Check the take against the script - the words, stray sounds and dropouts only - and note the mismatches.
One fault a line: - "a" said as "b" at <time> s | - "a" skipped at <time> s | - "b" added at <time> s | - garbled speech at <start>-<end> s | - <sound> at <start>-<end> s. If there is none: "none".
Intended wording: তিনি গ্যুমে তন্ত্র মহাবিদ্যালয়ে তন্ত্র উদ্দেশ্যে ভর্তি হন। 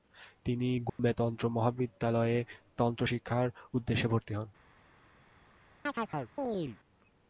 - dropout at 0.9-1.0 s
- "শিক্ষার" added at 3.0 s
- chirp at 5.9-6.8 s